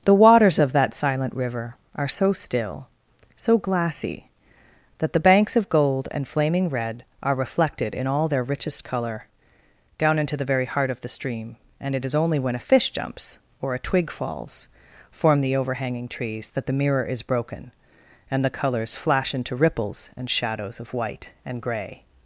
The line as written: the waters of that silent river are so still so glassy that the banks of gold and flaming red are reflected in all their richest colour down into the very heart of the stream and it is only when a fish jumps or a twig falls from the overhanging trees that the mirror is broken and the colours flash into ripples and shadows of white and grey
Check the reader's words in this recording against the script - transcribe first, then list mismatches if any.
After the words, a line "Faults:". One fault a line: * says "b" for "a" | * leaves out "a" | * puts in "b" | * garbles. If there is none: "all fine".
the waters of that silent river are so still so glassy that the banks of gold and flaming red are reflected in all their richest colour down into the very heart of the stream and it is only when a fish jumps or a twig falls form the overhanging trees that the mirror is broken and the colours flash into ripples and shadows of white and grey
Faults:
* says "form" for "from"